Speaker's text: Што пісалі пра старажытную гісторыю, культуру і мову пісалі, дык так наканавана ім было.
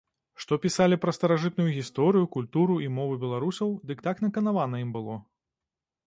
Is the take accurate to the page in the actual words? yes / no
no